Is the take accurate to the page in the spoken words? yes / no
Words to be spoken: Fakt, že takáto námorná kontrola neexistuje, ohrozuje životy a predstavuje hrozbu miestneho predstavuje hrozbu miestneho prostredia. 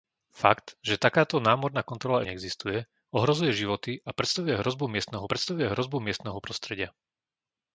yes